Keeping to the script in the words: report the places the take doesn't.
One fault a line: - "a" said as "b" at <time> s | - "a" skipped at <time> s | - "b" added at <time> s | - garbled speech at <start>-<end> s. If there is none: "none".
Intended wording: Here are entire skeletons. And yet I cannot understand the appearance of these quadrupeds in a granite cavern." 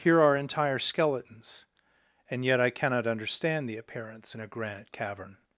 - "of these quadrupeds" skipped at 4.3 s